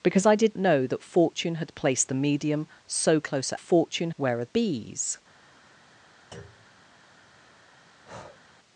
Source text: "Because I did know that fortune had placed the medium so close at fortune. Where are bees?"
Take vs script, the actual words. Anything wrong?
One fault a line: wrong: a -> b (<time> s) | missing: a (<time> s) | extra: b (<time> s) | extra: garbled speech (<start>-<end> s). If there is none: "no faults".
no faults